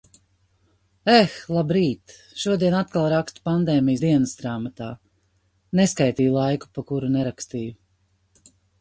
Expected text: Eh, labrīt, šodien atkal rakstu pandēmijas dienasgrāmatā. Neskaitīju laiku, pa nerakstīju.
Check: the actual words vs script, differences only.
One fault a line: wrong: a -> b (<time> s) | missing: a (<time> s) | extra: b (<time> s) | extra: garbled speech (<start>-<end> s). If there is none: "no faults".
extra: kuru (6.9 s)